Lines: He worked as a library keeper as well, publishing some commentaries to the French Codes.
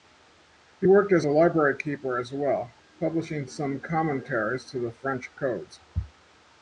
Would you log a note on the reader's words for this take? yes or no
no